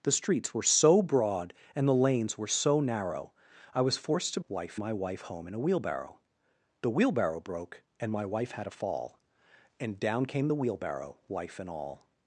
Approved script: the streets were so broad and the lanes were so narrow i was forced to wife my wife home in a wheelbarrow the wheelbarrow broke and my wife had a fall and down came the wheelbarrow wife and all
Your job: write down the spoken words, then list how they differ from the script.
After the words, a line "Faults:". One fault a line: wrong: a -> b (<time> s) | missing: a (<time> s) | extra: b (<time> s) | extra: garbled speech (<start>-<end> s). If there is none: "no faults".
the streets were so broad and the lanes were so narrow i was forced to wife my wife home in a wheelbarrow the wheelbarrow broke and my wife had a fall and down came the wheelbarrow wife and all
Faults:
no faults